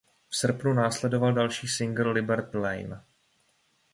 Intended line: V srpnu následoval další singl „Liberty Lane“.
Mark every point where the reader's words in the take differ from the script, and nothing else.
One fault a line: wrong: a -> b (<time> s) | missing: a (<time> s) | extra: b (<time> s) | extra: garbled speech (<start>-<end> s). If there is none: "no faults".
no faults